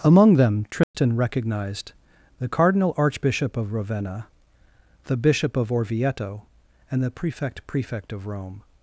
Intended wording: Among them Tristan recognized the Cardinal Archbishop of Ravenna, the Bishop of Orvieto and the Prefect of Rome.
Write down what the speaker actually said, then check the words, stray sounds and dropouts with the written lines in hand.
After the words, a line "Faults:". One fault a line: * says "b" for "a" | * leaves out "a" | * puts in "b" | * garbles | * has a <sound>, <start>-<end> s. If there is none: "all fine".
Among them Tristan recognized the Cardinal Archbishop of Ravenna, the Bishop of Orvieto and the Prefect Prefect of Rome.
Faults:
* has a dropout, 0.8-0.9 s
* puts in "Prefect"